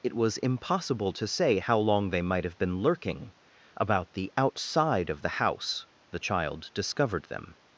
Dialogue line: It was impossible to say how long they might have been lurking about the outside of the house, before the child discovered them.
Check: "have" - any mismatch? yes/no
no